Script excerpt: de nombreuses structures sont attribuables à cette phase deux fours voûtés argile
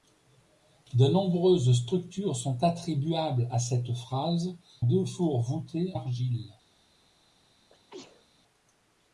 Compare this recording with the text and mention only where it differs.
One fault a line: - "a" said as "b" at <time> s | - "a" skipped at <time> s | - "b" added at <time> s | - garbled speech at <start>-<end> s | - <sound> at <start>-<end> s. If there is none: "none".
- sneeze at 7.7-8.3 s